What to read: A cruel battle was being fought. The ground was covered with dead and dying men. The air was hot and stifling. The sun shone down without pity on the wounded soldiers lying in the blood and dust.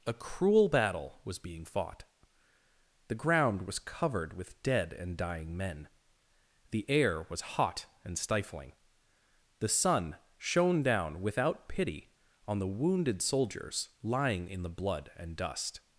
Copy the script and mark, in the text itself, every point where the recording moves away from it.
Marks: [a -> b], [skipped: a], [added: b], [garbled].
A cruel battle was being fought. The ground was covered with dead and dying men. The air was hot and stifling. The sun shone down without pity on the wounded soldiers lying in the blood and dust.